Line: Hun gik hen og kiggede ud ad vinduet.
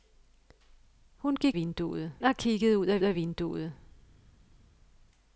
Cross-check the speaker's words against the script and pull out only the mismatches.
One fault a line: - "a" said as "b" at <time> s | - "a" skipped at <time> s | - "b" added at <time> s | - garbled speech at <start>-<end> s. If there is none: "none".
- "hen" said as "vinduet" at 1.5 s
- "ad" added at 3.0 s